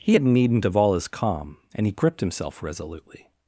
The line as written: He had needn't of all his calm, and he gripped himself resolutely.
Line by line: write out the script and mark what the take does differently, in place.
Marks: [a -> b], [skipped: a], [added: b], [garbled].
He had needn't of all his calm, and he gripped himself resolutely.